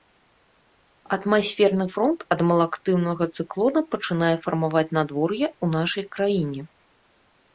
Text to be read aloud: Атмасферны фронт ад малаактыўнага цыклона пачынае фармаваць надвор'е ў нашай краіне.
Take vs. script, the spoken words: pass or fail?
pass